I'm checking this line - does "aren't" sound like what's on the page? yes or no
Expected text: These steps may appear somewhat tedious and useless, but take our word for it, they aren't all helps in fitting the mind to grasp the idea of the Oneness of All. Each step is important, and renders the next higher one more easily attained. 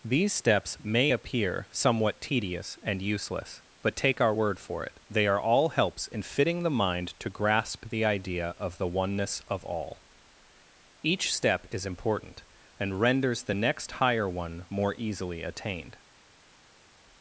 no